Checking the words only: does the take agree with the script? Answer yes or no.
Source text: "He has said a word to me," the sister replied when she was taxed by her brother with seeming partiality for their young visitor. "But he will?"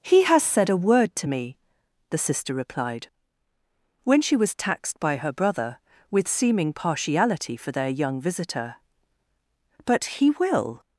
yes